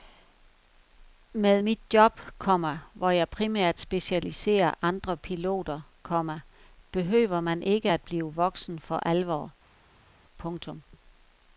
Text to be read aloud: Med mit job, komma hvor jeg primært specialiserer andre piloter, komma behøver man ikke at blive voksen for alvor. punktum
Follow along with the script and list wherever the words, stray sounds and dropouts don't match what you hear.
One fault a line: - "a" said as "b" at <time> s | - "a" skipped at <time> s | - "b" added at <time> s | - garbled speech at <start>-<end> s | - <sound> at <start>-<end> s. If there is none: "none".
none